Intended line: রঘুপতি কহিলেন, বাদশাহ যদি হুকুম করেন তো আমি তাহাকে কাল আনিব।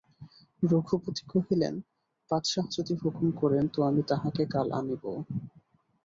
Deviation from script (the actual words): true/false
false